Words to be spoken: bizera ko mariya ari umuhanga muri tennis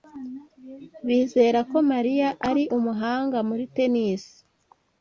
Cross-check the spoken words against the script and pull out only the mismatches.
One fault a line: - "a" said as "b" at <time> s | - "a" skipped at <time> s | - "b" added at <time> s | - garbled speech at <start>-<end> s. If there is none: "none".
none